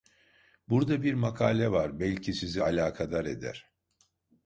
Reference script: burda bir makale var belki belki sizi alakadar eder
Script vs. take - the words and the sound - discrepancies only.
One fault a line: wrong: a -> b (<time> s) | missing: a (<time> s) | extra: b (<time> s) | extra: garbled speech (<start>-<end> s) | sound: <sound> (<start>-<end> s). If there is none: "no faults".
missing: belki (2.3 s)